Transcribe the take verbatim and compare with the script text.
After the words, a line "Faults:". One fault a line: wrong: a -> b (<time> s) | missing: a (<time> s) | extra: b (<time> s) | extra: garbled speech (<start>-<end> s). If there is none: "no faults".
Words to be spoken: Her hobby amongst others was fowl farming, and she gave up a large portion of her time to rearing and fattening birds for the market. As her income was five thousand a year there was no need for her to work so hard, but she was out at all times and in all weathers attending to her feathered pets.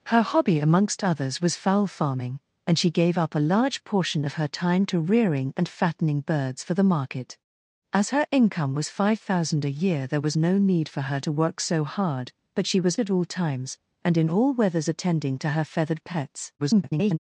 Her hobby amongst others was fowl farming, and she gave up a large portion of her time to rearing and fattening birds for the market. As her income was five thousand a year there was no need for her to work so hard, but she was at all times and in all weathers attending to her feathered pets. [garbled]
Faults:
missing: out (13.0 s)
extra: garbled speech (16.6-17.2 s)